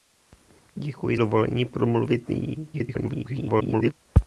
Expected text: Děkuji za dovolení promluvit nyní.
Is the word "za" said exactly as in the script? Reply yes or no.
no